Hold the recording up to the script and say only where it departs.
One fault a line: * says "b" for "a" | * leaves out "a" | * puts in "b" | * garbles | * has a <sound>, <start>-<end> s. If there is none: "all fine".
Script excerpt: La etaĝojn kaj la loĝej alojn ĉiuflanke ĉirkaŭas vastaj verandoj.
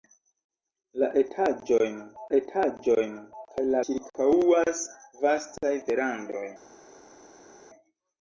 * puts in "etaĝojn"
* leaves out "loĝej alojn ĉiuflanke"